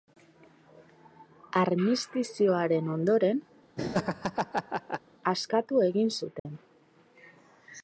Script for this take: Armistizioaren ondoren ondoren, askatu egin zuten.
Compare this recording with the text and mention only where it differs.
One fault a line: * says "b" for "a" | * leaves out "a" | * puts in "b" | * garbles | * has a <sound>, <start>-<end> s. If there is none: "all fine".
* leaves out "ondoren"
* has a laugh, 3.8-5.0 s
* has a dropout, 6.4-6.5 s